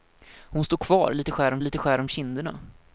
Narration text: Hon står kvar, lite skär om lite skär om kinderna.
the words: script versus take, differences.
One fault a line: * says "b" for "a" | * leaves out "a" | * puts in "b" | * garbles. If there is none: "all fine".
all fine